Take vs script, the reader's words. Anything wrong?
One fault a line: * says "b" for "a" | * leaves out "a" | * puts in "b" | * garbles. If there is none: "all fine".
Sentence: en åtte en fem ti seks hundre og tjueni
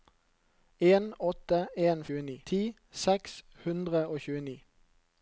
* says "tjueni" for "fem"